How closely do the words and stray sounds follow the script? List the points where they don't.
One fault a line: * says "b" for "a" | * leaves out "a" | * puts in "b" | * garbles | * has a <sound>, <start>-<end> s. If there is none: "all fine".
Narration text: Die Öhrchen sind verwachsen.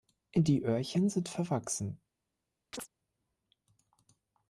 * has a chirp, 2.7-2.9 s